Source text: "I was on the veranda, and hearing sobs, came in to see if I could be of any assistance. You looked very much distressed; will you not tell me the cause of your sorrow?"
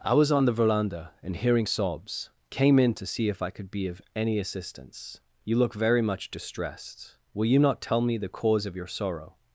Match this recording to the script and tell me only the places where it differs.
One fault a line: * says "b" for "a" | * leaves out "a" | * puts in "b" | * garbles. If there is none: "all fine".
* says "look" for "looked"